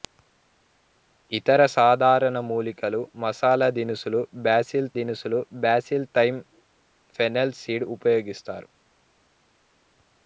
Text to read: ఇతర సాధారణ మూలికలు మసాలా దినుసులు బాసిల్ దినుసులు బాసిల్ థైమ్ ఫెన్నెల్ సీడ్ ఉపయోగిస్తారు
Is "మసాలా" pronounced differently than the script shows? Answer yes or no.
no